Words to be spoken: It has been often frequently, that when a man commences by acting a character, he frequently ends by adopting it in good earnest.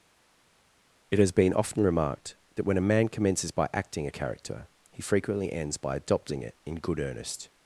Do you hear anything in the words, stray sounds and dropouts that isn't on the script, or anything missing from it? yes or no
yes